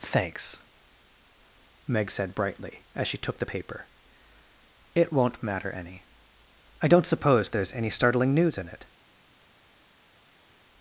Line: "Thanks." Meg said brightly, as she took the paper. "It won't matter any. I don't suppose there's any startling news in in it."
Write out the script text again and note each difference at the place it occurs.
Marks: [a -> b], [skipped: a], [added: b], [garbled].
"Thanks." Meg said brightly, as she took the paper. "It won't matter any. I don't suppose there's any startling news in [skipped: in] it."